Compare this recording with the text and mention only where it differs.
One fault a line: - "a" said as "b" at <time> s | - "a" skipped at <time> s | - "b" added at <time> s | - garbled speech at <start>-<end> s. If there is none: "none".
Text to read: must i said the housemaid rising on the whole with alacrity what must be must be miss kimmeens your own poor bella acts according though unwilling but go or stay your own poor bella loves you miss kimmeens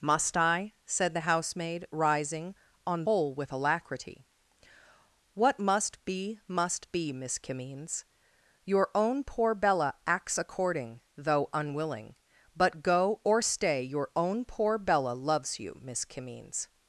- "the" skipped at 3.0 s